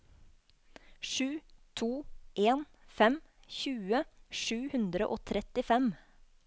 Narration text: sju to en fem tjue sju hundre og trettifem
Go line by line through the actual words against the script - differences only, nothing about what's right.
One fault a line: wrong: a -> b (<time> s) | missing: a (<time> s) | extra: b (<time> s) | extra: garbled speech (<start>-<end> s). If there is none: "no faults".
no faults